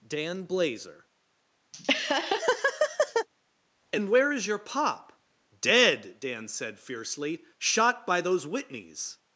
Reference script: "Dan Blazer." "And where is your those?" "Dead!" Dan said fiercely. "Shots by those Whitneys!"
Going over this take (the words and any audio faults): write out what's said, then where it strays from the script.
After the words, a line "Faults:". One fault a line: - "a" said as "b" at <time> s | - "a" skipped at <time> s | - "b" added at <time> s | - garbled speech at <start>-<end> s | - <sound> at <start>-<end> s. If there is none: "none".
"Dan Blazer." "And where is your pop?" "Dead!" Dan said fiercely. "Shot by those Whitneys!"
Faults:
- laugh at 1.7-3.3 s
- "those" said as "pop" at 4.6 s
- "Shots" said as "Shot" at 7.6 s